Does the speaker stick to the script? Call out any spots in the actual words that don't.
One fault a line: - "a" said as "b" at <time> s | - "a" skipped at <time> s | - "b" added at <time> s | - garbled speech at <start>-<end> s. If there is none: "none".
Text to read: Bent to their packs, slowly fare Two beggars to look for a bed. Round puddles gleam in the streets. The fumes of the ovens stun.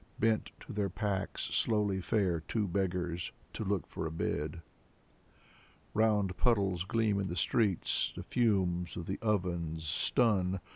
none